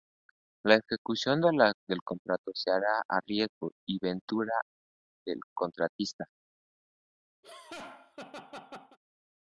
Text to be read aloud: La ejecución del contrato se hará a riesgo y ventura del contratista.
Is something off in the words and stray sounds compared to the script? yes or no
yes